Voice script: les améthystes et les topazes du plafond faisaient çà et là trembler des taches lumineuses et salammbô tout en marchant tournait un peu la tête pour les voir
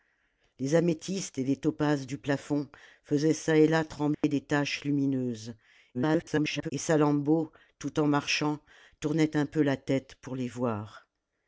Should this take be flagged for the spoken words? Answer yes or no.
yes